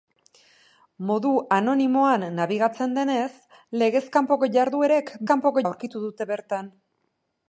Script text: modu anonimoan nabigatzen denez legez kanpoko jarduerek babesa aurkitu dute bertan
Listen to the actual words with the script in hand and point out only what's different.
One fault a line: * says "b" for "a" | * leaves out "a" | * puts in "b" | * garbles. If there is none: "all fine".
* says "kanpoko" for "babesa"